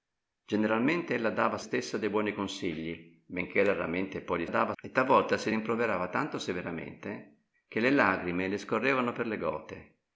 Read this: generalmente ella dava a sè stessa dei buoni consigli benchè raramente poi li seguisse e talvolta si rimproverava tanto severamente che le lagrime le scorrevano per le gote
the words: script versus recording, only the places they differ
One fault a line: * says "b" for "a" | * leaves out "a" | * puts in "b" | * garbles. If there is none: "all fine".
* leaves out "sè"
* says "dava" for "seguisse"